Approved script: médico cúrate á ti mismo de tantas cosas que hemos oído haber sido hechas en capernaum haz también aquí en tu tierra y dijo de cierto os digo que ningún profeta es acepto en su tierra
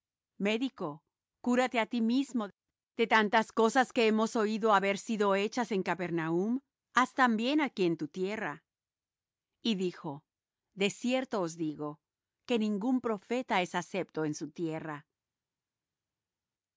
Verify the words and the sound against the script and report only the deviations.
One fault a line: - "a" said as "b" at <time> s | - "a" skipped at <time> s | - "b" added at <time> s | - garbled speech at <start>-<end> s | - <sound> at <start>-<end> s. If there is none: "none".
none